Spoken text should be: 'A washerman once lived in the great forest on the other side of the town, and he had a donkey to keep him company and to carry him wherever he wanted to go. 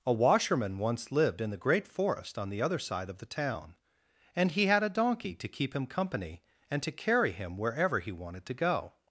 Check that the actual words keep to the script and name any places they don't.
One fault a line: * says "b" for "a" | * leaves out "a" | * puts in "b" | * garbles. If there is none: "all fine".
all fine